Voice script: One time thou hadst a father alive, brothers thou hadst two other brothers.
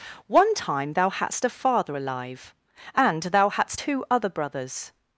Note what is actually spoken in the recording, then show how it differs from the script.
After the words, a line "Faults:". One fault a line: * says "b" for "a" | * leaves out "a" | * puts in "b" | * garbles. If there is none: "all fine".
One time thou hadst a father alive, and thou hadst two other brothers.
Faults:
* says "and" for "brothers"